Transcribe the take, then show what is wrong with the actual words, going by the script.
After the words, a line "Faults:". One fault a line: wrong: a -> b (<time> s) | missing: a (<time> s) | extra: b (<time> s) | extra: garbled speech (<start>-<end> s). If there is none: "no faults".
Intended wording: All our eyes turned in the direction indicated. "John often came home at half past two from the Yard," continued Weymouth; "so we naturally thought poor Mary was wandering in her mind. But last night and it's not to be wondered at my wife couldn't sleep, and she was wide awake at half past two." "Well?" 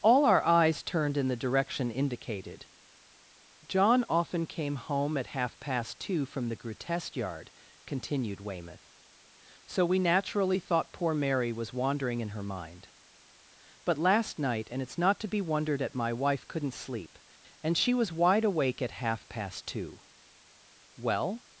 All our eyes turned in the direction indicated. "John often came home at half past two from the grotesque Yard," continued Weymouth; "so we naturally thought poor Mary was wandering in her mind. But last night and it's not to be wondered at my wife couldn't sleep, and she was wide awake at half past two." "Well?"
Faults:
extra: grotesque (6.5 s)